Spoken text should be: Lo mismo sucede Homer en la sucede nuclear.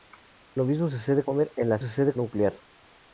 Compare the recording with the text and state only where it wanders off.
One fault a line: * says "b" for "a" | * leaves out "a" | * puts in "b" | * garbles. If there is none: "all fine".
all fine